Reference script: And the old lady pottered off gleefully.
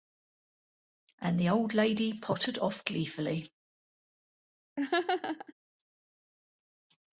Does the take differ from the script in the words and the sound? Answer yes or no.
yes